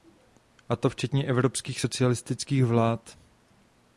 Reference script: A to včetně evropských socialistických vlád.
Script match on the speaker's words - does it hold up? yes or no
yes